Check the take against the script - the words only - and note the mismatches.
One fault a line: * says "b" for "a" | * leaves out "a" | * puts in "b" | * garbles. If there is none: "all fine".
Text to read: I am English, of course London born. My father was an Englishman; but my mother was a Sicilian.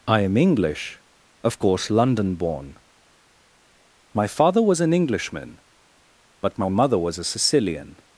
all fine